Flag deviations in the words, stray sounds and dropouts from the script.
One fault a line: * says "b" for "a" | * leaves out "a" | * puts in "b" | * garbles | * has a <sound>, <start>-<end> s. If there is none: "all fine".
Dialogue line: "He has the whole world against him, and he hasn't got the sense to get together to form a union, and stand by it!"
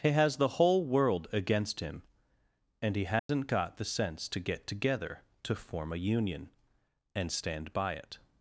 * has a dropout, 3.2-3.3 s